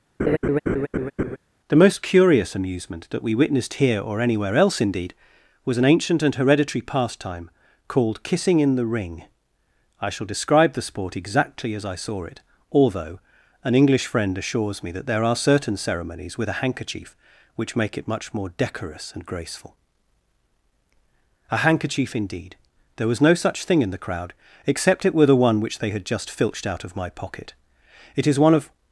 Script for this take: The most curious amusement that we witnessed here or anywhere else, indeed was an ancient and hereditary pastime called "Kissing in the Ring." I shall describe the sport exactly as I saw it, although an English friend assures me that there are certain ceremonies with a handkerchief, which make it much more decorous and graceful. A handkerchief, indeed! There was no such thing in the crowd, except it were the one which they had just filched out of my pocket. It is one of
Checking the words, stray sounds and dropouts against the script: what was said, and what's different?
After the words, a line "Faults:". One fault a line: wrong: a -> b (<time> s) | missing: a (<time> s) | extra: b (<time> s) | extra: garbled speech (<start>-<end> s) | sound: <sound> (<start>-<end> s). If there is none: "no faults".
The most curious amusement that we witnessed here or anywhere else, indeed was an ancient and hereditary pastime called "Kissing in the Ring." I shall describe the sport exactly as I saw it, although an English friend assures me that there are certain ceremonies with a handkerchief, which make it much more decorous and graceful. A handkerchief, indeed! There was no such thing in the crowd, except it were the one which they had just filched out of my pocket. It is one of
Faults:
sound: laugh (0.2-1.4 s)